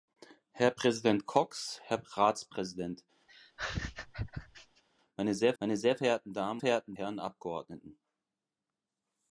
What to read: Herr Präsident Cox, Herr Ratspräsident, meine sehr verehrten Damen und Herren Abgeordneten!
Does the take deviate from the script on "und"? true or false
true